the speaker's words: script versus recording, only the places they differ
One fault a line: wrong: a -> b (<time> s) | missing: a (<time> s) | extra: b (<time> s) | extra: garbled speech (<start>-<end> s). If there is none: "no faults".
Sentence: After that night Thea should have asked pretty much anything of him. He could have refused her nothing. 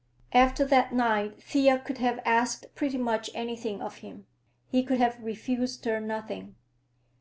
wrong: should -> could (1.8 s)